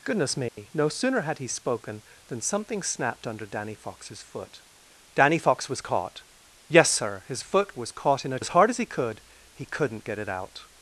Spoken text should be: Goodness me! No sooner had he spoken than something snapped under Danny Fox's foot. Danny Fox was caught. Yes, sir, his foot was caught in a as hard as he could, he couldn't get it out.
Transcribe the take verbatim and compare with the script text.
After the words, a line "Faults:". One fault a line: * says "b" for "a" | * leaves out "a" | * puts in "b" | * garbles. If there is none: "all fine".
Goodness me! No sooner had he spoken than something snapped under Danny Fox's foot. Danny Fox was caught. Yes, sir, his foot was caught in a as hard as he could, he couldn't get it out.
Faults:
all fine